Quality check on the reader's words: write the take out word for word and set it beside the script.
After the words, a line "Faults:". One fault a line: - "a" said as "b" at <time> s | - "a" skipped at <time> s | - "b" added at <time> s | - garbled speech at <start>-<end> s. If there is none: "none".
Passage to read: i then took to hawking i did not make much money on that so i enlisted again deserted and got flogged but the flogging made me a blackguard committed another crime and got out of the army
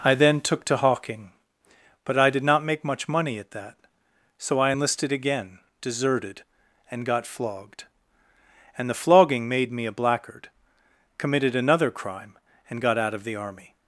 i then took to hawking but i did not make much money at that so i enlisted again deserted and got flogged and the flogging made me a blackguard committed another crime and got out of the army
Faults:
- "but" added at 2.0 s
- "on" said as "at" at 3.4 s
- "but" said as "and" at 8.8 s